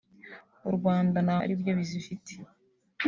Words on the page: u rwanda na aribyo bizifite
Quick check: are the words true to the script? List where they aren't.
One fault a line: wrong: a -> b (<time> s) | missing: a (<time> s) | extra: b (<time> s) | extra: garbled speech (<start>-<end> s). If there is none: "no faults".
no faults